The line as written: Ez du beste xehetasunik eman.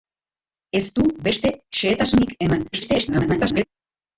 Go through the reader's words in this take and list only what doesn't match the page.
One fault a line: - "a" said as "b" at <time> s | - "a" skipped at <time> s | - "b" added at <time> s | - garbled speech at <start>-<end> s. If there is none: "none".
- garbled speech at 2.7-3.6 s